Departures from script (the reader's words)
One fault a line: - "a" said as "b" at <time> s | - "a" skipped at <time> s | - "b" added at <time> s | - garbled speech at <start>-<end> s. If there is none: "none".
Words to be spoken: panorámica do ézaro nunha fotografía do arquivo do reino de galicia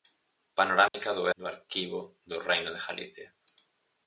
- "ézaro nunha fotografía" skipped at 1.2 s